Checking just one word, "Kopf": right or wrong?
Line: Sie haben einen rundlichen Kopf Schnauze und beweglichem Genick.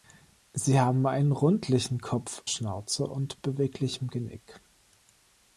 right